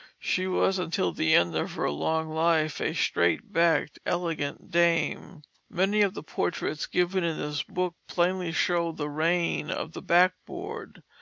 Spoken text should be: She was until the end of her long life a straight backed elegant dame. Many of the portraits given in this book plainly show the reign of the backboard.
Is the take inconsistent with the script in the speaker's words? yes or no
no